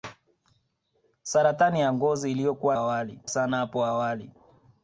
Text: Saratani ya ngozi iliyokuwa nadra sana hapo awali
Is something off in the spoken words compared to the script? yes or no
yes